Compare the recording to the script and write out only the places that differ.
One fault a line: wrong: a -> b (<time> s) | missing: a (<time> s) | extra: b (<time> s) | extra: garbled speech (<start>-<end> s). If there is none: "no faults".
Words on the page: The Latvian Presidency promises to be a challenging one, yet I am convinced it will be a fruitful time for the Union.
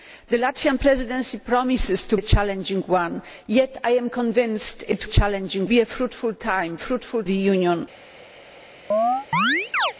missing: be (2.2 s)
wrong: will -> challenging (5.0 s)
wrong: for -> fruitful (6.8 s)